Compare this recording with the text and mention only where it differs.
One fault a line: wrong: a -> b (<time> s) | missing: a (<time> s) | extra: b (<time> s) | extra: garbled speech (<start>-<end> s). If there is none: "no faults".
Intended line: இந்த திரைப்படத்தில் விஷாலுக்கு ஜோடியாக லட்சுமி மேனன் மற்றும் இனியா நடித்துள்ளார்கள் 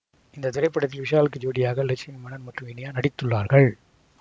no faults